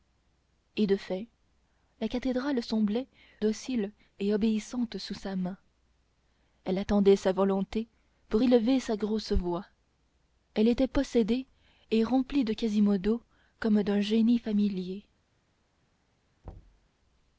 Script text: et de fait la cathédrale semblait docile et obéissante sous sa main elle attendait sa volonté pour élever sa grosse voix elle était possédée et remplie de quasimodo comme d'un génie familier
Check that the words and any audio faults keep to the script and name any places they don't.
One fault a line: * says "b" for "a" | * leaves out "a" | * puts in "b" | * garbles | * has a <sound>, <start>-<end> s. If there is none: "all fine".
* has a thud, 16.4-16.9 s